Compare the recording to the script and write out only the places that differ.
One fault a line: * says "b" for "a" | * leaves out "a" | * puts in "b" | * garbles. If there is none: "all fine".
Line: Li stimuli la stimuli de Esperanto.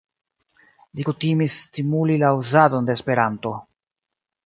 * puts in "kutimis"
* says "uzadon" for "stimuli"